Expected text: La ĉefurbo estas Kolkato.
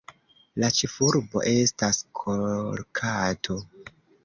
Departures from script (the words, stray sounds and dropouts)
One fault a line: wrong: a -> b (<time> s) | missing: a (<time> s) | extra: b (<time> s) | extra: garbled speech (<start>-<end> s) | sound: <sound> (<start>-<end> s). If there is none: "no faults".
no faults